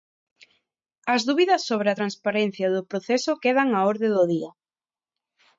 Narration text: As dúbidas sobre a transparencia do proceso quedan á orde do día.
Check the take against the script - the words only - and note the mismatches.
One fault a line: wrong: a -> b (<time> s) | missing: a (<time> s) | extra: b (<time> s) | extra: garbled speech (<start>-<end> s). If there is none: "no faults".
no faults